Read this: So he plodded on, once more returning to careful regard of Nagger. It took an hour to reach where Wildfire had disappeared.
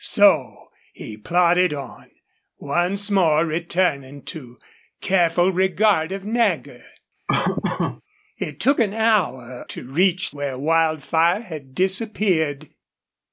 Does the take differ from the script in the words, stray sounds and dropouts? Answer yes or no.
yes